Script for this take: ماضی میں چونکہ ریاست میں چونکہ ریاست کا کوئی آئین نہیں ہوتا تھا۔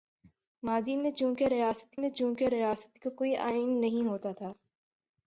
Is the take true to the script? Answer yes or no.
yes